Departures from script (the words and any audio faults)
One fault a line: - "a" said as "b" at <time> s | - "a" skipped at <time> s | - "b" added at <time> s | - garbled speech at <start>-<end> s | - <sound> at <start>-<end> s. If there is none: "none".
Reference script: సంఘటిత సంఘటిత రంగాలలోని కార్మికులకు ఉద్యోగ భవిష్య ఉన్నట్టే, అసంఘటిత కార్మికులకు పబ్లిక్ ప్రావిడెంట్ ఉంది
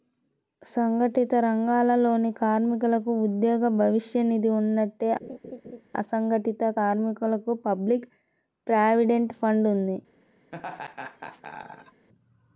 - "సంఘటిత" skipped at 1.3 s
- "నిధి" added at 4.3 s
- laugh at 5.2-5.8 s
- "ఫండ్" added at 9.4 s
- laugh at 10.5-12.1 s